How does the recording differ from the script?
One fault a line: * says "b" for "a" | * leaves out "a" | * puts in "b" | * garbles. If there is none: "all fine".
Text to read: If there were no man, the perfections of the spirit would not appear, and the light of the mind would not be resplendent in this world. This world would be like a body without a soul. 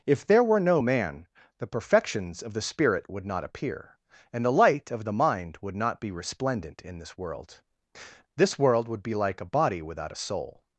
all fine